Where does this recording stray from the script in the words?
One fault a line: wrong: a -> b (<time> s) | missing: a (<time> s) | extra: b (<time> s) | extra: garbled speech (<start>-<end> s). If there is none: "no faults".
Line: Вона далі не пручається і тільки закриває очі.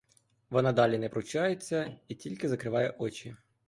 no faults